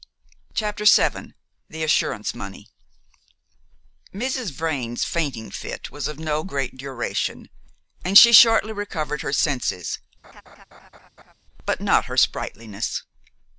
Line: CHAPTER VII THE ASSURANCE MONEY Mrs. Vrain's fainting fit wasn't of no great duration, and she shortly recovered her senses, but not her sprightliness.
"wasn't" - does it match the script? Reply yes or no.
no